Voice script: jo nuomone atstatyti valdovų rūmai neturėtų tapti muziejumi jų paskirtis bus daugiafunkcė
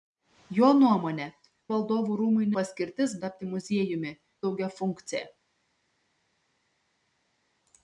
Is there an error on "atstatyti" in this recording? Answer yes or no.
yes